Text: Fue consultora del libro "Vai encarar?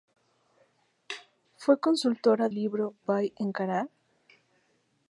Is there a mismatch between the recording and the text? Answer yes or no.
yes